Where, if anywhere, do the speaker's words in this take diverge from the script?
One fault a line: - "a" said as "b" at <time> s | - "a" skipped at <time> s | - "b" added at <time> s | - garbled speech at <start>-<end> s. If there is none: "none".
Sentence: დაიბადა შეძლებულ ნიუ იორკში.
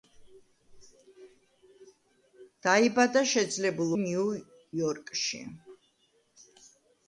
none